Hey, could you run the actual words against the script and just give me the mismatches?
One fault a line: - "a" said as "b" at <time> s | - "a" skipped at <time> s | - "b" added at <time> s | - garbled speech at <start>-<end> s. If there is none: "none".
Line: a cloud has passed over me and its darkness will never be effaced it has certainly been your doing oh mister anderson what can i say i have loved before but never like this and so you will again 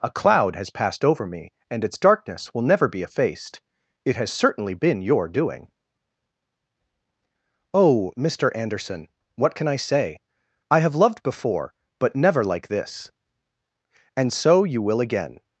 none